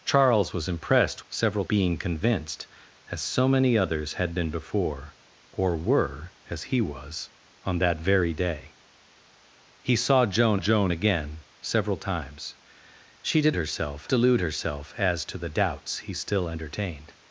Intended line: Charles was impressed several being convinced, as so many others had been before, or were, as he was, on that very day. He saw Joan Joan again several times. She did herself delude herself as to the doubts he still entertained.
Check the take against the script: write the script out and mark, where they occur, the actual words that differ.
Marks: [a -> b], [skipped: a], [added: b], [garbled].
Charles was impressed several being convinced, as so many others had been before, or were, as he was, on that very day. He saw Joan Joan again several times. She did herself delude herself as to the doubts he still entertained.